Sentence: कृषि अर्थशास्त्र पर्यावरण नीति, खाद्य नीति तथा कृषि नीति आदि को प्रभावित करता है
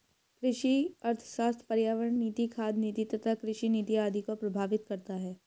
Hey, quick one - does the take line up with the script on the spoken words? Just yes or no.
yes